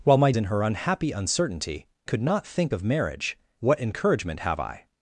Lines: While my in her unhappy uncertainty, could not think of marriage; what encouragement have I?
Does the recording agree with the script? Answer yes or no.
yes